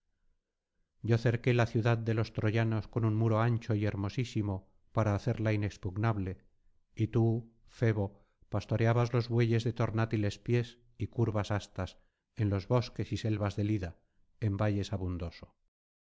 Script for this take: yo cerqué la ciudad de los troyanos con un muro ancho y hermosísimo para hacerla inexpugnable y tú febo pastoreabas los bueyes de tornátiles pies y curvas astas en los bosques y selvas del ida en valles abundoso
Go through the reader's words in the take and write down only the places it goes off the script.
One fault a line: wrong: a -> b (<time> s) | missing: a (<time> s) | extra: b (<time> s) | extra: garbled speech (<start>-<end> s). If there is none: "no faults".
no faults